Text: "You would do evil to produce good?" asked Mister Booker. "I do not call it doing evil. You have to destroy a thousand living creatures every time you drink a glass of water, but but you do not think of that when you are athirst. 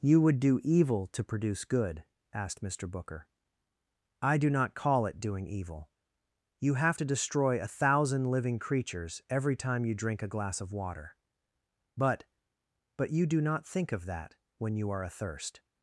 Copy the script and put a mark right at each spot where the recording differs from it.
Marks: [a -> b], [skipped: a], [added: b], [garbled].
"You would do evil to produce good?" asked Mister Booker. "I do not call it doing evil. You have to destroy a thousand living creatures every time you drink a glass of water, but but you do not think of that when you are athirst.